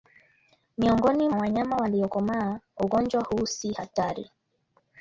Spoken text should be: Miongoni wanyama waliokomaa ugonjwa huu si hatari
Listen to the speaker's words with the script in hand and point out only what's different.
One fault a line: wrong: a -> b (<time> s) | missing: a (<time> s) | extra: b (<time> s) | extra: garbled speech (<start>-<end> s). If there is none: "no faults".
no faults